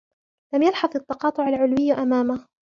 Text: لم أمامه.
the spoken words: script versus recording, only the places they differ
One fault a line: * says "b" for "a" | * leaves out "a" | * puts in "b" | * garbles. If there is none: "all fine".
* puts in "يلحظ التقاطع العلوي"